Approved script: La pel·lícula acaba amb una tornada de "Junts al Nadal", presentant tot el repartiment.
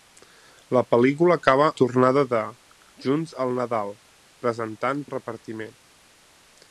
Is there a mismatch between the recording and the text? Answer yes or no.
yes